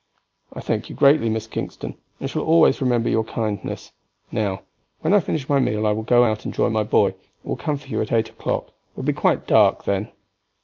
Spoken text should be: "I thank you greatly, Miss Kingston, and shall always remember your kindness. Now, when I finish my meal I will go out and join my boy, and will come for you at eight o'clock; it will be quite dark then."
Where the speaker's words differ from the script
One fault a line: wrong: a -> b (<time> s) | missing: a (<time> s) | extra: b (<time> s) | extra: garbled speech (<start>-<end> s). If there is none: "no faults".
no faults